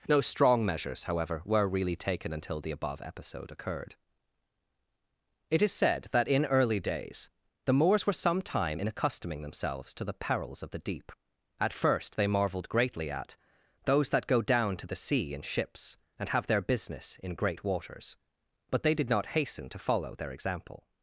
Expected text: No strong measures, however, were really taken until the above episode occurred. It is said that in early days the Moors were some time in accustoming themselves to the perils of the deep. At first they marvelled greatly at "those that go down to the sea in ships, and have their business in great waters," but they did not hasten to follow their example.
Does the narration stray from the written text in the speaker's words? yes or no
no